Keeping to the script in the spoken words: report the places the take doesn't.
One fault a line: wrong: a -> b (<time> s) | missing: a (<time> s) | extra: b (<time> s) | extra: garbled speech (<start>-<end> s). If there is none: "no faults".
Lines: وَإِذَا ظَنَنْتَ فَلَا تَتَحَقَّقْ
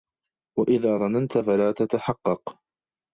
no faults